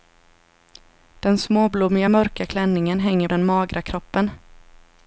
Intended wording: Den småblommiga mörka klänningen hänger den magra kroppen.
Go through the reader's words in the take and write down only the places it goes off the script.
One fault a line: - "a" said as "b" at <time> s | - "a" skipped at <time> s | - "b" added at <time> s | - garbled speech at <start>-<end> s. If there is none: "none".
none